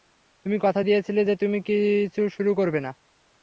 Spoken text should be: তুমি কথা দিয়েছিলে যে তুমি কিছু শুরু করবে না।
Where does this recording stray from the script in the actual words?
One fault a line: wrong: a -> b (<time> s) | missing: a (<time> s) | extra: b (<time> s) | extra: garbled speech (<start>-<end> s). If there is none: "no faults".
no faults